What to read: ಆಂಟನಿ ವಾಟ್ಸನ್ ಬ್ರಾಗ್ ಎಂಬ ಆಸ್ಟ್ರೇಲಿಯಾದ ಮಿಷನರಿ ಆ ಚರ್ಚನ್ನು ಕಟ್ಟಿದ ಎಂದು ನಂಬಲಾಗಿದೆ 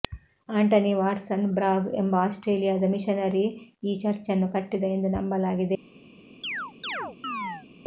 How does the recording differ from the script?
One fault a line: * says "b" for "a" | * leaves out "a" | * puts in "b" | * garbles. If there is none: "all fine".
* says "ಈ" for "ಆ"